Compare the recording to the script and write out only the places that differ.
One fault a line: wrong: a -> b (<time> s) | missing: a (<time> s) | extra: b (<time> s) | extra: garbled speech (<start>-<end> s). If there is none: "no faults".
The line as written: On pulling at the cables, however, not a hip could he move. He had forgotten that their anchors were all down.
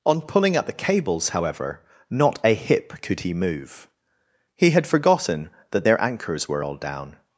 no faults